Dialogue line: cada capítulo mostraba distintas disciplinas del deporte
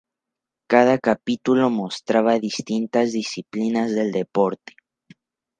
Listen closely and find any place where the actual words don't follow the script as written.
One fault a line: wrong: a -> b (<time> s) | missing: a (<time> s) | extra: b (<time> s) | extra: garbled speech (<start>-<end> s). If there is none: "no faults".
no faults